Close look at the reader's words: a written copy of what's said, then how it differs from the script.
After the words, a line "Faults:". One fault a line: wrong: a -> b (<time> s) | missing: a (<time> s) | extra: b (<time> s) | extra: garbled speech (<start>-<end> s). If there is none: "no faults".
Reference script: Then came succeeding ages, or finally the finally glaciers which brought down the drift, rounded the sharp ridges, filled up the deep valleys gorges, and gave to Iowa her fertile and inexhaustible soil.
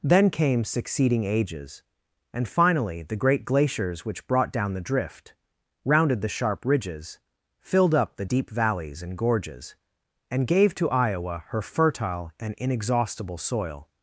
Then came succeeding ages, and finally the great glaciers which brought down the drift, rounded the sharp ridges, filled up the deep valleys and gorges, and gave to Iowa her fertile and inexhaustible soil.
Faults:
wrong: or -> and (2.3 s)
wrong: finally -> great (3.1 s)
extra: and (9.0 s)